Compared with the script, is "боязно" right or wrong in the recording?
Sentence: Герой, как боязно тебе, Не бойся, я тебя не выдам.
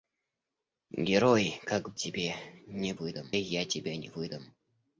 wrong